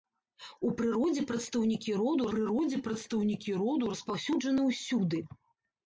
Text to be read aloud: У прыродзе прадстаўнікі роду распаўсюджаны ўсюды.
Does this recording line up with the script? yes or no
no